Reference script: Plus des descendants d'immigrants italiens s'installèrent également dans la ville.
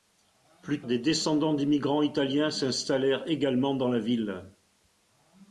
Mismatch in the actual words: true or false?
false